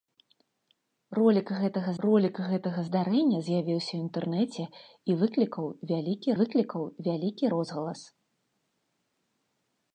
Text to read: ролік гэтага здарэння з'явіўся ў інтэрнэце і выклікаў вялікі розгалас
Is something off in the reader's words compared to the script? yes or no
yes